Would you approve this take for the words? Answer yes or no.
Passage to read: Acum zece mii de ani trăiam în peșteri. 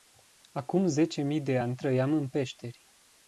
yes